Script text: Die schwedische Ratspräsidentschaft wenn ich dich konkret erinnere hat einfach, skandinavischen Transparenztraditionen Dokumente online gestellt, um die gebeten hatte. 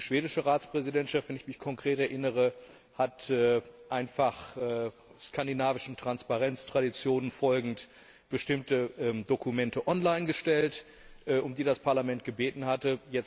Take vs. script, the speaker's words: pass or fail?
fail